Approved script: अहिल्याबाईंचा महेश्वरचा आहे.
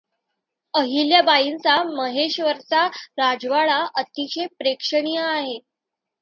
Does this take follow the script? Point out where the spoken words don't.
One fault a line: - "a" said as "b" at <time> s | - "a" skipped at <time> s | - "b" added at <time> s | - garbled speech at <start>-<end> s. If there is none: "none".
- "राजवाडा अतिशय प्रेक्षणीय" added at 3.2 s